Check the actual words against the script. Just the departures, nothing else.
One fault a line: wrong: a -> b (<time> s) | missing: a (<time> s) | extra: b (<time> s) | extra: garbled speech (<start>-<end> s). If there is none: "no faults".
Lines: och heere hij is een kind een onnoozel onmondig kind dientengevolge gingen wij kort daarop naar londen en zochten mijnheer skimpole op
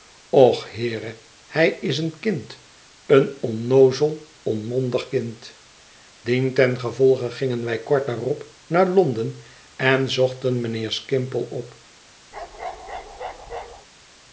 no faults